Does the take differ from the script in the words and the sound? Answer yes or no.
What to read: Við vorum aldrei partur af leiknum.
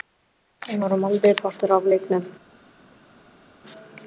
no